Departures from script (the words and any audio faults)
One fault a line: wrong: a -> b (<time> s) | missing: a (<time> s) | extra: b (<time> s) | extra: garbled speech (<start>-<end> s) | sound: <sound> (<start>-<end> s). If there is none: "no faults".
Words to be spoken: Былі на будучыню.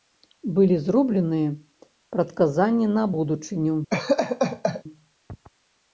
extra: зробленыя прадказанні (0.8 s)
sound: laugh (3.9-4.8 s)